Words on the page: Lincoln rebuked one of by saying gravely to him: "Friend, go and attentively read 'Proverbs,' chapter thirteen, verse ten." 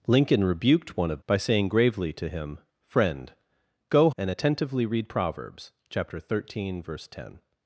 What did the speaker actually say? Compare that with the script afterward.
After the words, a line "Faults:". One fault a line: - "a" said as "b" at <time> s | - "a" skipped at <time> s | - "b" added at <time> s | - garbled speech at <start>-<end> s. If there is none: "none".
Lincoln rebuked one of by saying gravely to him: "Friend, go and attentively read 'Proverbs,' chapter thirteen, verse ten."
Faults:
none